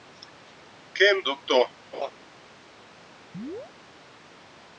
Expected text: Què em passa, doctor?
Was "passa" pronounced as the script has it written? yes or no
no